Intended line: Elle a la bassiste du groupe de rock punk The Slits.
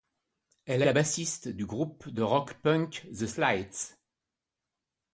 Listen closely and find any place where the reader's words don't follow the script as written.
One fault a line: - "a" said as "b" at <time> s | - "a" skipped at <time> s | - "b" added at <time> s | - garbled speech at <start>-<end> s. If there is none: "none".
none